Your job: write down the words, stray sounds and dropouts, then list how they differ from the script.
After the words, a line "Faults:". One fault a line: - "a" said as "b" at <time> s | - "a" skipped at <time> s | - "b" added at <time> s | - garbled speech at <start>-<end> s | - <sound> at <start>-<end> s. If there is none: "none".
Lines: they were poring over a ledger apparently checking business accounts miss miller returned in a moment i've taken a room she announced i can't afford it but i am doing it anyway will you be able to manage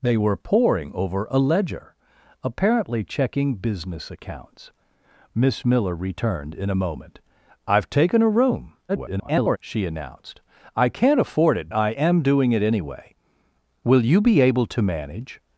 they were poring over a ledger apparently checking business accounts miss miller returned in a moment i've taken a room [garbled] she announced i can't afford it i am doing it anyway will you be able to manage
Faults:
- garbled speech at 8.9-9.6 s
- "but" skipped at 11.7 s